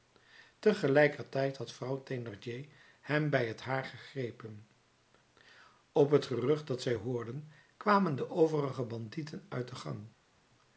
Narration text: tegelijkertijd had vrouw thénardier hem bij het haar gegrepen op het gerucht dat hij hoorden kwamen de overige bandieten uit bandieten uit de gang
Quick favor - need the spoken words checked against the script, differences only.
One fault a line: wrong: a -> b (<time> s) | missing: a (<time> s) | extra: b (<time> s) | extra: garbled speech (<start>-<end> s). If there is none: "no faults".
wrong: hij -> zij (6.8 s)
missing: bandieten uit (9.7 s)